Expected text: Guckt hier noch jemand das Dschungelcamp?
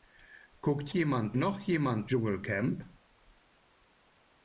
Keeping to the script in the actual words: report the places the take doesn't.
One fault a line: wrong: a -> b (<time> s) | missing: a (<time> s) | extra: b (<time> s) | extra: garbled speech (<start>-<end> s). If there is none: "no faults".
wrong: hier -> jemand (0.9 s)
missing: das (2.1 s)